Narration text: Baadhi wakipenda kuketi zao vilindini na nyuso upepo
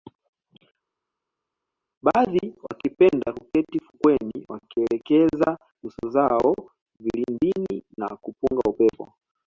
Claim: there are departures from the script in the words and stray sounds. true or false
true